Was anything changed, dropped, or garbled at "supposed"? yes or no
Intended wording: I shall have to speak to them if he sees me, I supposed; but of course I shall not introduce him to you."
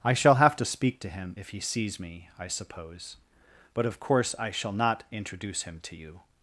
yes